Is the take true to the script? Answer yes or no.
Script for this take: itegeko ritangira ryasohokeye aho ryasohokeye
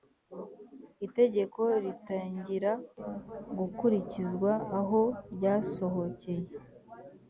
no